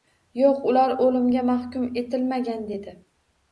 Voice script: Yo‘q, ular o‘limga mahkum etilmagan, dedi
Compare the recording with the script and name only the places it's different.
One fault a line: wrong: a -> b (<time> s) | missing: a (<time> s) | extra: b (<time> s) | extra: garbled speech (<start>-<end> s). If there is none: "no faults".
no faults